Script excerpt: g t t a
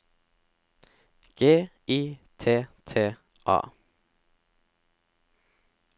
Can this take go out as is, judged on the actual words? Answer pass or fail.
fail